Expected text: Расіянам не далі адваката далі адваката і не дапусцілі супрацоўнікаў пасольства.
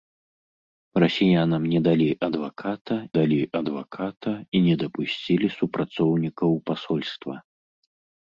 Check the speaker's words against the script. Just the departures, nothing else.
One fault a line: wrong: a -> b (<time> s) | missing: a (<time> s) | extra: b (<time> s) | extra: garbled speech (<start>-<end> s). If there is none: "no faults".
no faults